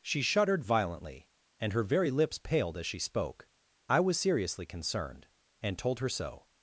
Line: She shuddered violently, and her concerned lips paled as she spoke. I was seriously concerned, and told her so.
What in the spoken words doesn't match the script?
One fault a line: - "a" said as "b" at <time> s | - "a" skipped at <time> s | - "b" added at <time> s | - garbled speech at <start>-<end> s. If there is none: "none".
- "concerned" said as "very" at 1.8 s